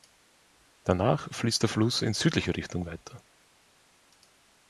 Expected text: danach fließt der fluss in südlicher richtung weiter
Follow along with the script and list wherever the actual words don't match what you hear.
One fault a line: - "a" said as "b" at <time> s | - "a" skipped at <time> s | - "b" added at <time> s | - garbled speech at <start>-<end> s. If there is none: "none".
none